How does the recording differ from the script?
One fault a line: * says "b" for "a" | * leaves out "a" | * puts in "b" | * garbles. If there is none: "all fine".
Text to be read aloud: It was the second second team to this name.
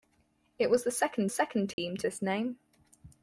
all fine